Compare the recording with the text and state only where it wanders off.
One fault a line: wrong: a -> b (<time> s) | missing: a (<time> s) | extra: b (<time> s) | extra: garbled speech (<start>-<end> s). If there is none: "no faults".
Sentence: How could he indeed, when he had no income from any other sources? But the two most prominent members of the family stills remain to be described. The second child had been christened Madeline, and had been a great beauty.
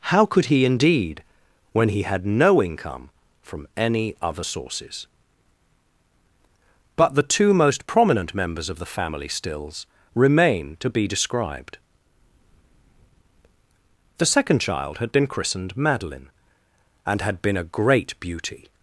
no faults